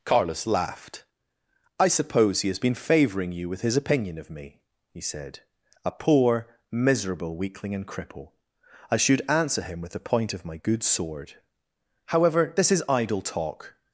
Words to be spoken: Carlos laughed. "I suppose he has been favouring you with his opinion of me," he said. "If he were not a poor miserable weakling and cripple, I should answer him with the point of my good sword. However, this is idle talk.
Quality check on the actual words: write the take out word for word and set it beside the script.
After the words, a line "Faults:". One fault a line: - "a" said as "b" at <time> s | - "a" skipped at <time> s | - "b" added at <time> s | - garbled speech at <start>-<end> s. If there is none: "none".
Carlos laughed. "I suppose he has been favouring you with his opinion of me," he said. "a poor miserable weakling and cripple, I should answer him with the point of my good sword. However, this is idle talk.
Faults:
- "If he were not" skipped at 5.4 s